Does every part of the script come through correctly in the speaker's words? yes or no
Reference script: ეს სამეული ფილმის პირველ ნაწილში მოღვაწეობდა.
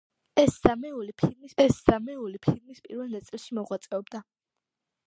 no